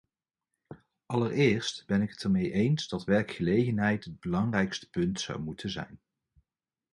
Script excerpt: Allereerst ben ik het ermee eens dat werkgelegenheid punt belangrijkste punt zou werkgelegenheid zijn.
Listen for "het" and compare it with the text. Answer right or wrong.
right